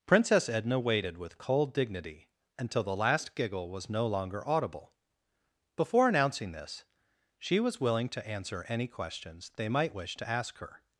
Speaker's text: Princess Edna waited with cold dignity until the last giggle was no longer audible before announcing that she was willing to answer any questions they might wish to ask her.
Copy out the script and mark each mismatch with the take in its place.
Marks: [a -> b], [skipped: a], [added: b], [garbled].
Princess Edna waited with cold dignity until the last giggle was no longer audible before announcing [that -> this] she was willing to answer any questions they might wish to ask her.